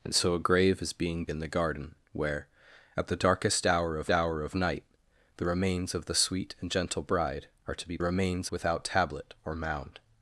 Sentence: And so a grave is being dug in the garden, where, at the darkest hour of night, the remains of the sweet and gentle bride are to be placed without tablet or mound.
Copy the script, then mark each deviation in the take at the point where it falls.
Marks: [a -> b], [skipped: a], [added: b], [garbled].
And so a grave is being [skipped: dug] in the garden, where, at the darkest hour of [added: hour of] night, the remains of the sweet and gentle bride are to be [placed -> remains] without tablet or mound.